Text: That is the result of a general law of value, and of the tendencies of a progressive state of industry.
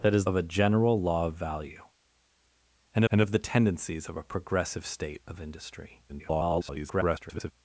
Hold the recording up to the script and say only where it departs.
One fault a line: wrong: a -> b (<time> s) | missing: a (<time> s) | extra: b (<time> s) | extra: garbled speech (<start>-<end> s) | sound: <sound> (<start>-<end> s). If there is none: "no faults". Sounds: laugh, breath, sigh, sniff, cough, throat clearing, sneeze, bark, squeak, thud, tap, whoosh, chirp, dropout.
missing: the result (0.2 s)
extra: and (3.1 s)
extra: garbled speech (6.1-7.5 s)